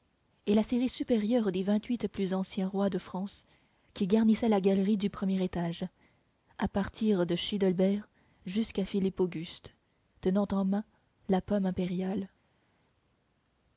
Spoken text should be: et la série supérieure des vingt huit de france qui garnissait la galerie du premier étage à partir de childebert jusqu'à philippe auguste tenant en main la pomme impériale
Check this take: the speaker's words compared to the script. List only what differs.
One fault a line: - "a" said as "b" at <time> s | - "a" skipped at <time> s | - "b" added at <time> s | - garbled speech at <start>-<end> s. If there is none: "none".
- "plus anciens rois" added at 2.1 s